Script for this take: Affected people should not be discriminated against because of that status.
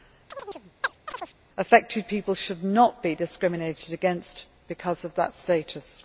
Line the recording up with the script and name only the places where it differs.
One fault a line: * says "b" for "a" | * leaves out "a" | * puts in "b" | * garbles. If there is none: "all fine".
all fine